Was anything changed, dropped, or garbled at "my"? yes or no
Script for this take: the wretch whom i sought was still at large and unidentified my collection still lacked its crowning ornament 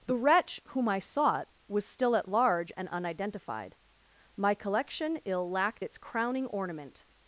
no